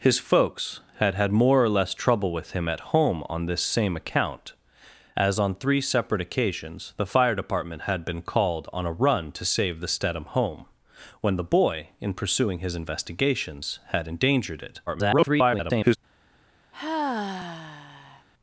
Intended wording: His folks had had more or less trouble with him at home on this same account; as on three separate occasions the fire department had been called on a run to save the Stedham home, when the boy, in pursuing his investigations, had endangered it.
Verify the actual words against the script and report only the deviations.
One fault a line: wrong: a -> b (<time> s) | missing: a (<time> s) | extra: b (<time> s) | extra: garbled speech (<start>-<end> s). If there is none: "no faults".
extra: garbled speech (14.9-16.0 s)